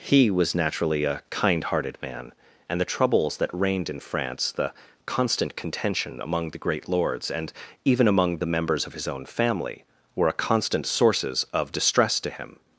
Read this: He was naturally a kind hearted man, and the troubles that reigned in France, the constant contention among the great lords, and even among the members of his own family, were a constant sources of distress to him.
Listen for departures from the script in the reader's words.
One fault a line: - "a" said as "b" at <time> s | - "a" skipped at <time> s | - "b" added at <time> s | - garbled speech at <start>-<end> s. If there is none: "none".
none